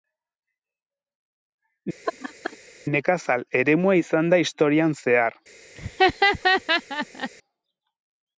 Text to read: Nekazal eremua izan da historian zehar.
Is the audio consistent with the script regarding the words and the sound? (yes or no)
no